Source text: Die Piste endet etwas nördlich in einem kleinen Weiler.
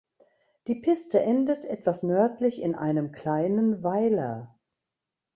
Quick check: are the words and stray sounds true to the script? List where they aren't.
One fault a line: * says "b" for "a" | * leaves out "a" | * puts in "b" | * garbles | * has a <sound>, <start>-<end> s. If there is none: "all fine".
all fine